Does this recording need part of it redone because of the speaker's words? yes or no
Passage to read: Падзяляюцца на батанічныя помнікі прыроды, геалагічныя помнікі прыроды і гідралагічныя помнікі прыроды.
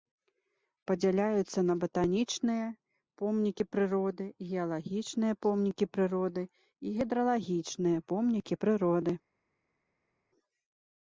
no